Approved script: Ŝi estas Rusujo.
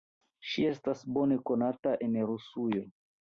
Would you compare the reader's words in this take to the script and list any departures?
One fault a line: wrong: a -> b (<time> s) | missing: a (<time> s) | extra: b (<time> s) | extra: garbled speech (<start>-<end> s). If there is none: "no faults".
extra: bone konata en (1.2 s)